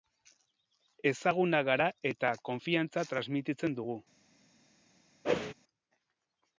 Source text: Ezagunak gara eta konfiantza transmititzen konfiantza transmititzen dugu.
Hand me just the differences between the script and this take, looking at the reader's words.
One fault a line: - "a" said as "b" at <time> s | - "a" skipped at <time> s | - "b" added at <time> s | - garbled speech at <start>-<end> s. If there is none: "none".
- "konfiantza transmititzen" skipped at 3.8 s